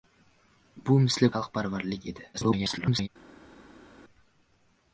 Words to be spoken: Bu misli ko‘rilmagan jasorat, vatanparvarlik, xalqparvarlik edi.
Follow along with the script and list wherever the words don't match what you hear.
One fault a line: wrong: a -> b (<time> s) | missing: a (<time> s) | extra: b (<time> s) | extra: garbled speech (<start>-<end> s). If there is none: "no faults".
missing: ko‘rilmagan jasorat vatanparvarlik (1.3 s)
extra: garbled speech (2.3-3.1 s)